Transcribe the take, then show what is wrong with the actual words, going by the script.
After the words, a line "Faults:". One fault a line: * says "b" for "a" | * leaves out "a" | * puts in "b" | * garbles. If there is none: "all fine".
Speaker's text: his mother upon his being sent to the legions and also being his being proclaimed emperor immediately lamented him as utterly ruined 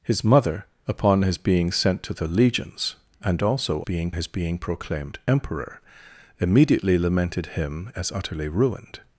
his mother upon his being sent to the legions and also being his being proclaimed emperor immediately lamented him as utterly ruined
Faults:
all fine